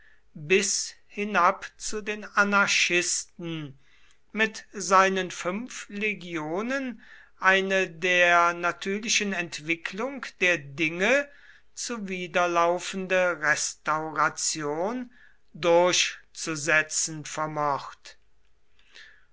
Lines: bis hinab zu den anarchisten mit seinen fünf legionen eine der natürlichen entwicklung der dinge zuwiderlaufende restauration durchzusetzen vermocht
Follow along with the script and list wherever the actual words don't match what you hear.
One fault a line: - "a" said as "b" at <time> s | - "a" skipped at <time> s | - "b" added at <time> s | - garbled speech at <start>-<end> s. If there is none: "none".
none